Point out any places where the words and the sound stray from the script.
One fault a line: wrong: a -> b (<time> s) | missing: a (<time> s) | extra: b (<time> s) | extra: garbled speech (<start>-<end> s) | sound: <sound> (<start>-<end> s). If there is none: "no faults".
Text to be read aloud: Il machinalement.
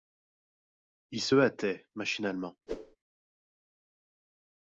extra: se hâtait (1.2 s)
sound: whoosh (2.7-3.0 s)